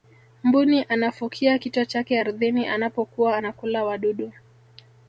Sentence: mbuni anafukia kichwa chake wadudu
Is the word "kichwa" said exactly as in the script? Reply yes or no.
yes